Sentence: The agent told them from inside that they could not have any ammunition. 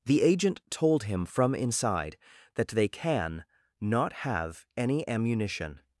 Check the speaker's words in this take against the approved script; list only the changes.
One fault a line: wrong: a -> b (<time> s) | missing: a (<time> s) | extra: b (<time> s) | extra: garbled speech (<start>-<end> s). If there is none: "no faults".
wrong: them -> him (1.0 s)
wrong: could -> can (2.9 s)